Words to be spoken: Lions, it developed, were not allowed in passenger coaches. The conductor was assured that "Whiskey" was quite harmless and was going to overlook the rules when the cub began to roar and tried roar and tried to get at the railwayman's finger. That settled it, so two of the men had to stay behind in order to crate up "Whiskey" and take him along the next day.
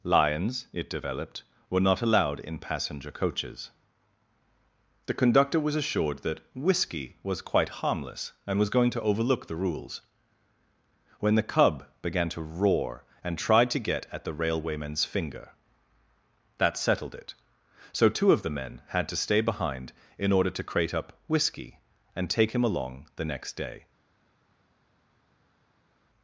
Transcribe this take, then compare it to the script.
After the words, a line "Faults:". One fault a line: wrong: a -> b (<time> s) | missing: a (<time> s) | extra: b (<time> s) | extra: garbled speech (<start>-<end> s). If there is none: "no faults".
Lions, it developed, were not allowed in passenger coaches. The conductor was assured that "Whiskey" was quite harmless and was going to overlook the rules when the cub began to roar and tried to get at the railwayman's finger. That settled it, so two of the men had to stay behind in order to crate up "Whiskey" and take him along the next day.
Faults:
missing: roar and tried (13.7 s)